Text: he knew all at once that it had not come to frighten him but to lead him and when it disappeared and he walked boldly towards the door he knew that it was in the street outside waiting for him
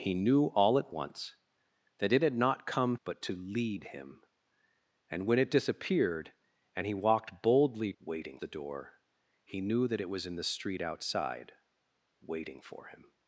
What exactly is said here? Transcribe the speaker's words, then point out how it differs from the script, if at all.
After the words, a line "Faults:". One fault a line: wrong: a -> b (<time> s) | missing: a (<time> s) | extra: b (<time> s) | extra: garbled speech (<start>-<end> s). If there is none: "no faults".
he knew all at once that it had not come but to lead him and when it disappeared and he walked boldly waiting the door he knew that it was in the street outside waiting for him
Faults:
missing: to frighten him (3.0 s)
wrong: towards -> waiting (8.0 s)